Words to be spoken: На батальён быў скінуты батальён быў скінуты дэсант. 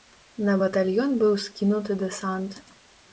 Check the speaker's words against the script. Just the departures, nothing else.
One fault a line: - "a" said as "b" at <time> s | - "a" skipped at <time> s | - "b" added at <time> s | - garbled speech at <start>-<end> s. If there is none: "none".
- "батальён быў скінуты" skipped at 2.0 s